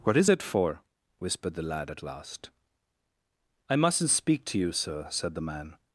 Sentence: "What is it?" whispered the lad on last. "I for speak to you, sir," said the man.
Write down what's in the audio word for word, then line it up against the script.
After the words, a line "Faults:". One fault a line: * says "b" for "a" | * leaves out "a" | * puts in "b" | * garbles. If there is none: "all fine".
"What is it for?" whispered the lad at last. "I mustn't speak to you, sir," said the man.
Faults:
* puts in "for"
* says "at" for "on"
* says "mustn't" for "for"